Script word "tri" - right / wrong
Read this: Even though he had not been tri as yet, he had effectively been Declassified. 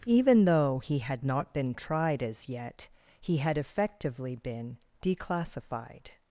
wrong